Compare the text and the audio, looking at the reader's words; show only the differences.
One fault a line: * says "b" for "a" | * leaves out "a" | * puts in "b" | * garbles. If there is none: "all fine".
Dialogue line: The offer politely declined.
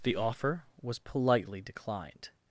* puts in "was"